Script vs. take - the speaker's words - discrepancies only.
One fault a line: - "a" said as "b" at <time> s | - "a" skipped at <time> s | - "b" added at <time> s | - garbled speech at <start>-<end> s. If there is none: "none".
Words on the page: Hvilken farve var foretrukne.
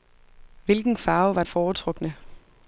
none